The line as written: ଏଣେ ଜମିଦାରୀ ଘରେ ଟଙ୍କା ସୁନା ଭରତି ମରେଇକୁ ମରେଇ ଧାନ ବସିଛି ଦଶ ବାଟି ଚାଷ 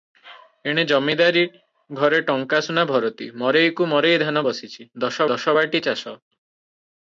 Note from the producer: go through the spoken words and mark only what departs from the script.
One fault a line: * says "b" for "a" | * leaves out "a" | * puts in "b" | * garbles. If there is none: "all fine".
* puts in "ଦଶ"